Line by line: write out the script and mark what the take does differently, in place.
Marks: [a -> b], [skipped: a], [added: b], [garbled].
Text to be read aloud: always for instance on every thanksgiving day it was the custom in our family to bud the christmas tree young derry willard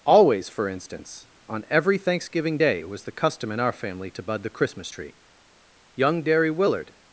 always for instance on every thanksgiving day it was the custom in our family to bud the christmas tree young derry willard